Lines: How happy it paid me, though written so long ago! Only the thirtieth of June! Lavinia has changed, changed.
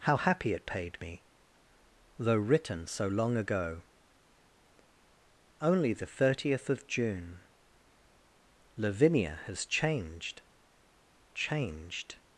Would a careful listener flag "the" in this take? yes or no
no